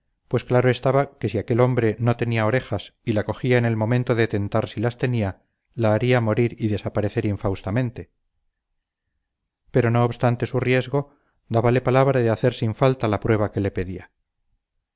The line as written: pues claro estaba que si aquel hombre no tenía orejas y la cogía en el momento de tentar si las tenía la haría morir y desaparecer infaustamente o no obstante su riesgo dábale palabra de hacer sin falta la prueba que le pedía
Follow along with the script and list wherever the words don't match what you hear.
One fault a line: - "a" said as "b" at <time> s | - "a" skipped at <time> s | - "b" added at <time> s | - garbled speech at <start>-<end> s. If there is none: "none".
- "o" said as "pero" at 9.7 s